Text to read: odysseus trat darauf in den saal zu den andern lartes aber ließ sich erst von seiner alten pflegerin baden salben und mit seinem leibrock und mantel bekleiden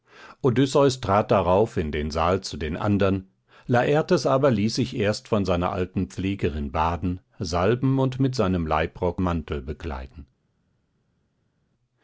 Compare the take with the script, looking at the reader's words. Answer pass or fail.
fail